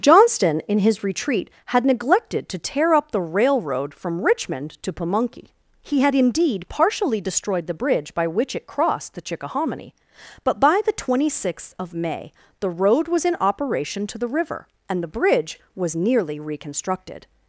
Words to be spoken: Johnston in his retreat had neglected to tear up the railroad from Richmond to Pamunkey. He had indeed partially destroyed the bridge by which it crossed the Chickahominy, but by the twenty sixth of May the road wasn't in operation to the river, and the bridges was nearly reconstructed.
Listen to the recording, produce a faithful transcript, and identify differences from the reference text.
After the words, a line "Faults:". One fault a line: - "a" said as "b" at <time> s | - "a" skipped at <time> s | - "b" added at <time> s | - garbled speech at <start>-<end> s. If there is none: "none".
Johnston in his retreat had neglected to tear up the railroad from Richmond to Pamunkey. He had indeed partially destroyed the bridge by which it crossed the Chickahominy, but by the twenty sixth of May the road was in operation to the river, and the bridge was nearly reconstructed.
Faults:
- "wasn't" said as "was" at 13.1 s
- "bridges" said as "bridge" at 15.1 s